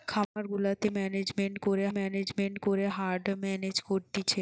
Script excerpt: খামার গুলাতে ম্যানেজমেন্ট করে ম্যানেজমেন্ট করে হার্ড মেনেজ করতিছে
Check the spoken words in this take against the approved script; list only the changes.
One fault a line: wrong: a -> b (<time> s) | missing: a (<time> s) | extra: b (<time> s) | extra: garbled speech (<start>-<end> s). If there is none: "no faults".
no faults